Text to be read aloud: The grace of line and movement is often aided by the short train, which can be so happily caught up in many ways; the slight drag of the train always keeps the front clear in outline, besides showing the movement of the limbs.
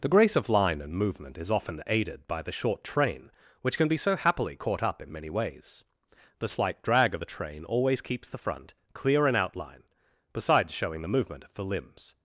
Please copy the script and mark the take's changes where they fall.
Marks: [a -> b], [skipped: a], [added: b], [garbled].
The grace of line and movement is often aided by the short train, which can be so happily caught up in many ways; the slight drag of the train always keeps the front clear in outline, besides showing the movement of the limbs.